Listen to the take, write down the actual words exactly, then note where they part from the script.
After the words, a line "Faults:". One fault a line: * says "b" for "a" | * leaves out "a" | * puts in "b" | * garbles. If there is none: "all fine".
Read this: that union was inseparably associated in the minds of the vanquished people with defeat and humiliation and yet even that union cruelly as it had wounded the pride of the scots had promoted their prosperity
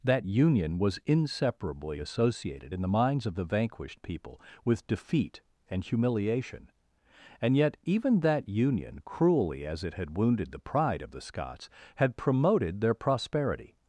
that union was inseparably associated in the minds of the vanquished people with defeat and humiliation and yet even that union cruelly as it had wounded the pride of the scots had promoted their prosperity
Faults:
all fine